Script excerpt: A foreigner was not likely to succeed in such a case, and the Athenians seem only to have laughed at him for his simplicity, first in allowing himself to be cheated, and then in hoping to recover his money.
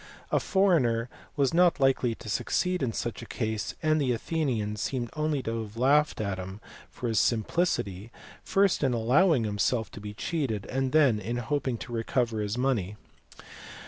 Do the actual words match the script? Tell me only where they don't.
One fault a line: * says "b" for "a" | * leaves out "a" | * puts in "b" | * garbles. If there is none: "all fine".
all fine